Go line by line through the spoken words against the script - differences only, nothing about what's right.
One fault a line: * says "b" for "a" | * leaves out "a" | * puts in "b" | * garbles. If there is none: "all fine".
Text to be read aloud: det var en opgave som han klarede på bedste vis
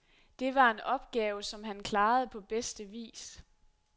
all fine